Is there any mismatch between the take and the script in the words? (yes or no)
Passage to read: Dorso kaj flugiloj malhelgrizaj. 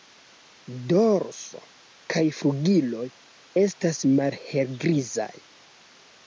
yes